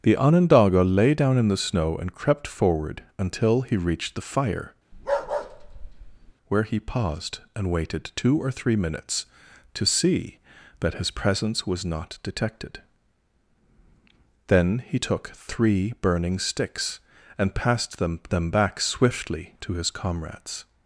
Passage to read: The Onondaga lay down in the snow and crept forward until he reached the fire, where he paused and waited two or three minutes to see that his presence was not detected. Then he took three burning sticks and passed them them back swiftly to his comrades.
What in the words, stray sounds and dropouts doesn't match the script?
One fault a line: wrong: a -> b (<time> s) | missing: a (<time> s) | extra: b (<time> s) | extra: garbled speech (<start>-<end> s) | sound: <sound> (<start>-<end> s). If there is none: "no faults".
sound: bark (4.9-6.3 s)